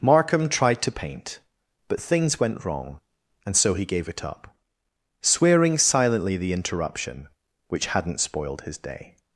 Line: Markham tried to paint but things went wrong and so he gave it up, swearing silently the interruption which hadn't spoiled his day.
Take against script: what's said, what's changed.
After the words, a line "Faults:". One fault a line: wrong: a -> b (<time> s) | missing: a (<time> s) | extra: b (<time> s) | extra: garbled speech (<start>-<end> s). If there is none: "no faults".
Markham tried to paint but things went wrong and so he gave it up, swearing silently the interruption which hadn't spoiled his day.
Faults:
no faults